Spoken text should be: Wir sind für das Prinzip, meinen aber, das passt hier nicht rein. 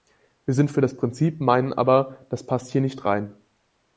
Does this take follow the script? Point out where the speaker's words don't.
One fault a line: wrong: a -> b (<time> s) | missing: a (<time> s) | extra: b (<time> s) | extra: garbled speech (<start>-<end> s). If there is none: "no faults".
no faults